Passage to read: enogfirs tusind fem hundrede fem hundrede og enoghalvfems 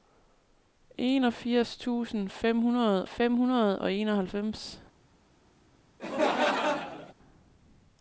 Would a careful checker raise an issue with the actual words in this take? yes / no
no